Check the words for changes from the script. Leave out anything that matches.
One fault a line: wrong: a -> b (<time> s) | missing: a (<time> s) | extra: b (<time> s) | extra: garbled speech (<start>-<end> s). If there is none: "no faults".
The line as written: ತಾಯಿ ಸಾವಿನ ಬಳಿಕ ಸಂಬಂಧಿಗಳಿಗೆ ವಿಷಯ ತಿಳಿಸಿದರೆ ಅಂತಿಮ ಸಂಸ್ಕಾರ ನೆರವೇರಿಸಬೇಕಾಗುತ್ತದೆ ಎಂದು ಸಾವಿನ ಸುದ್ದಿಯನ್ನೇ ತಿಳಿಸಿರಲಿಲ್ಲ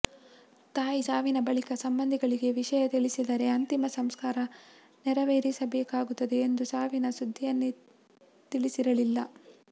no faults